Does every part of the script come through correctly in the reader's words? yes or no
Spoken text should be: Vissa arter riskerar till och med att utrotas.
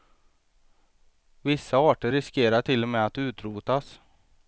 yes